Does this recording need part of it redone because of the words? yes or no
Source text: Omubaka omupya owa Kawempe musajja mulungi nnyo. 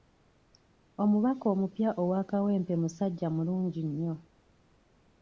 no